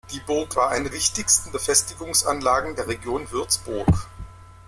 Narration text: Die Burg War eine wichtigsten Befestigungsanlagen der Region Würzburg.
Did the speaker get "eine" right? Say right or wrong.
right